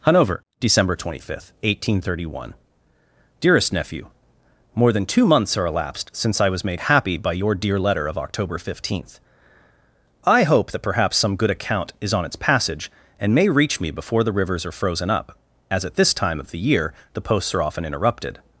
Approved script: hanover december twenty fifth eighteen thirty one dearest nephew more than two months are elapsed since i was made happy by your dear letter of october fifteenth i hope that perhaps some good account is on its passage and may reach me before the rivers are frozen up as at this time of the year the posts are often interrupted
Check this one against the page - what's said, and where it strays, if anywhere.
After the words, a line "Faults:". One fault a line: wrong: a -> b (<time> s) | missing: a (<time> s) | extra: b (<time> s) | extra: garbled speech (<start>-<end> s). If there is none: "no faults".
hanover december twenty fifth eighteen thirty one dearest nephew more than two months are elapsed since i was made happy by your dear letter of october fifteenth i hope that perhaps some good account is on its passage and may reach me before the rivers are frozen up as at this time of the year the posts are often interrupted
Faults:
no faults